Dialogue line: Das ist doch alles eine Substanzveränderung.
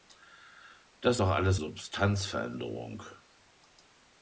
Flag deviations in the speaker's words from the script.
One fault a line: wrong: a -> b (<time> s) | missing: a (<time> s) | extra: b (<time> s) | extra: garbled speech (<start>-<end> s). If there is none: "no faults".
missing: ist (1.2 s)
missing: eine (1.6 s)